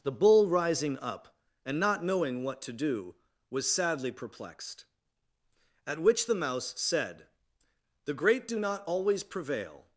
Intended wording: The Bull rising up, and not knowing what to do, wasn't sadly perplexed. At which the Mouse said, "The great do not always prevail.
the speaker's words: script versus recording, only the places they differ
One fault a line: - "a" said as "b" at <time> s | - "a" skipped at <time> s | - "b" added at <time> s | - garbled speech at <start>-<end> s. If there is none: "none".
- "wasn't" said as "was" at 3.5 s